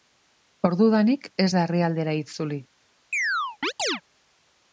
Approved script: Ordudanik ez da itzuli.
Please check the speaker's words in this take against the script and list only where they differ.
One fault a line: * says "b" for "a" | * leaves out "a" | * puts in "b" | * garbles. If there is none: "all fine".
* puts in "herrialdera"